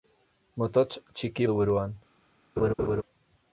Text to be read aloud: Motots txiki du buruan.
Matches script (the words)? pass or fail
pass